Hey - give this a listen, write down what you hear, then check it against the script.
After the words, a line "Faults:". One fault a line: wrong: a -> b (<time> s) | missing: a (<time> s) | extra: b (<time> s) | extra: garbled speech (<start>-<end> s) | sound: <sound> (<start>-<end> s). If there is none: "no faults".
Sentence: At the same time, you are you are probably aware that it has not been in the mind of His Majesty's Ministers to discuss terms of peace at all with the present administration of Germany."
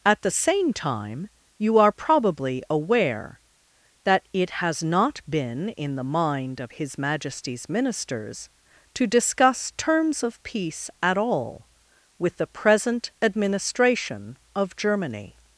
At the same time, you are probably aware that it has not been in the mind of His Majesty's Ministers to discuss terms of peace at all with the present administration of Germany."
Faults:
missing: you are (1.9 s)